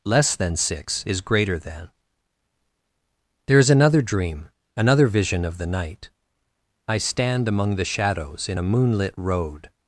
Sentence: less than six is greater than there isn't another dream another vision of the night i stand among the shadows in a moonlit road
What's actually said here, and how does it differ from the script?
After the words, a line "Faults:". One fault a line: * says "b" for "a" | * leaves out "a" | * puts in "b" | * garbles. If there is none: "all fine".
less than six is greater than there is another dream another vision of the night i stand among the shadows in a moonlit road
Faults:
* says "is" for "isn't"